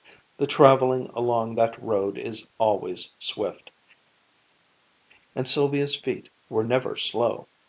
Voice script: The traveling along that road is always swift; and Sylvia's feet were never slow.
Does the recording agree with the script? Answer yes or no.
yes